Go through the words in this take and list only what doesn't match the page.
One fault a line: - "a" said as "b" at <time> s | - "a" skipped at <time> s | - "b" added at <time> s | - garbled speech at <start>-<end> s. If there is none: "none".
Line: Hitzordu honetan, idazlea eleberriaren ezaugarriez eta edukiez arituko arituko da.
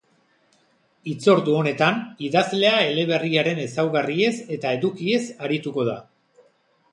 - "arituko" skipped at 5.9 s